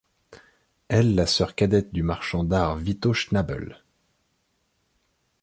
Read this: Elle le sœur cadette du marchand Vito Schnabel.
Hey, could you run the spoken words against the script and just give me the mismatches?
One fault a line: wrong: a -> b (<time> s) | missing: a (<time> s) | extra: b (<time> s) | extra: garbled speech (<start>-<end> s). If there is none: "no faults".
wrong: le -> la (1.1 s)
extra: d'art (2.4 s)